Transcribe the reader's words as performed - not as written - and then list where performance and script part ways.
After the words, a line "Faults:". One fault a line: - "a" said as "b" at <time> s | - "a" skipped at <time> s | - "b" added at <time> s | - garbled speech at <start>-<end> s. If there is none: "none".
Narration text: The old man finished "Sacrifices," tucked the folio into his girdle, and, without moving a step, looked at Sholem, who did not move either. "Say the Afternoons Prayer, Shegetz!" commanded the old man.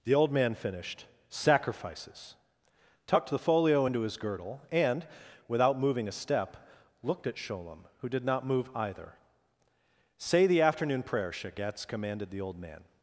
The old man finished "Sacrifices," tucked the folio into his girdle, and, without moving a step, looked at Sholem, who did not move either. "Say the Afternoon Prayer, Shegetz!" commanded the old man.
Faults:
- "Afternoons" said as "Afternoon" at 10.6 s